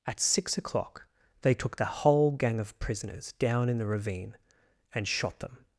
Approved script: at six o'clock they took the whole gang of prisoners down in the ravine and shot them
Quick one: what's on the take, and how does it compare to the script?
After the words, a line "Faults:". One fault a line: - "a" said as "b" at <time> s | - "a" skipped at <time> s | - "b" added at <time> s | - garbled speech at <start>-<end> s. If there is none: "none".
at six o'clock they took the whole gang of prisoners down in the ravine and shot them
Faults:
none